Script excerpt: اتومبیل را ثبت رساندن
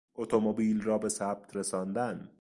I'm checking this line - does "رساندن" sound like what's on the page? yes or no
yes